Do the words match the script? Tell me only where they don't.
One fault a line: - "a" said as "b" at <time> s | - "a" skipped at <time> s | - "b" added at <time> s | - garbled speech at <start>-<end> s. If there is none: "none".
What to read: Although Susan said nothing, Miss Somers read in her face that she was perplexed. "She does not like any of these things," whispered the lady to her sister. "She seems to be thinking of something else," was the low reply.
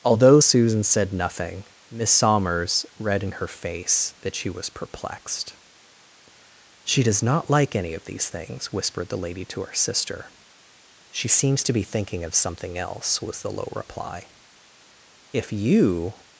- "If you" added at 15.3 s